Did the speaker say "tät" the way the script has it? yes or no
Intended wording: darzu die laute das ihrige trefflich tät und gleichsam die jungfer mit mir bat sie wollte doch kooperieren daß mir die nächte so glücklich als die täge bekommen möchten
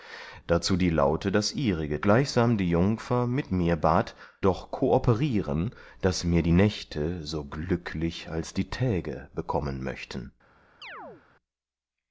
no